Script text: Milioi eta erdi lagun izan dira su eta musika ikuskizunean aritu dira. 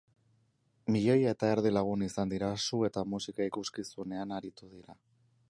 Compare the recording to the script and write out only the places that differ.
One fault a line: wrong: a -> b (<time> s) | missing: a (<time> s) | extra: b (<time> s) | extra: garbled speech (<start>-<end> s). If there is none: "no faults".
no faults